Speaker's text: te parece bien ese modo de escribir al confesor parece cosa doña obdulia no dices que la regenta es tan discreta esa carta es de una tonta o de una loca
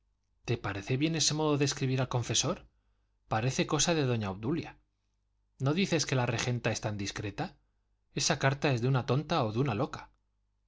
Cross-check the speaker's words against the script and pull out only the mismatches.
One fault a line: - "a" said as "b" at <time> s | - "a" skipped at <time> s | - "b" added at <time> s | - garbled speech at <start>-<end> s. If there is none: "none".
- "de" added at 3.9 s